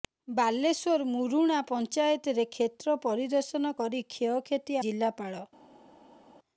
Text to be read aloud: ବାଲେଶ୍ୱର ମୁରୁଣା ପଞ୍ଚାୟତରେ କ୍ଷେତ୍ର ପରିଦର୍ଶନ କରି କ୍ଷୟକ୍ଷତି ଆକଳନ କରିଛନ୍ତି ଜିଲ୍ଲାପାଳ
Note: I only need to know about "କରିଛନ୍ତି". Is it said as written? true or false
false